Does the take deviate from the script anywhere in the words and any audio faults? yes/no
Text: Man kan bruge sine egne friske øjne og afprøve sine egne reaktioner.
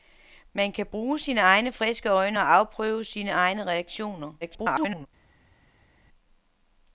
yes